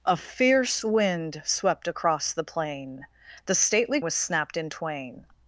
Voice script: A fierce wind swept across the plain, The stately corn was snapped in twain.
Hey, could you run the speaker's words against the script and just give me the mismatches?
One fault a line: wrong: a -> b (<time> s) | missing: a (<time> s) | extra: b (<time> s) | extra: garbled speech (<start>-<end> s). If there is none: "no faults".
missing: corn (4.0 s)